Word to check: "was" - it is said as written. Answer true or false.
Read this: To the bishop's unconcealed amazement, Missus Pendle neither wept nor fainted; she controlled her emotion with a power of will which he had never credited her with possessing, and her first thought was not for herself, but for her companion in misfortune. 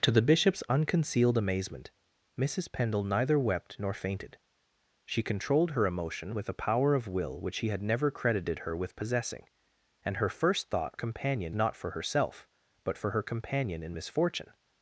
false